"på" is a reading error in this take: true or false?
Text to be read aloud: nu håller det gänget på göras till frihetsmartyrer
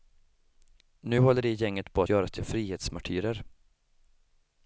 false